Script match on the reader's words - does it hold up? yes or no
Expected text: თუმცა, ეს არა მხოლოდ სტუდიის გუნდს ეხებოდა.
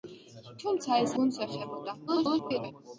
no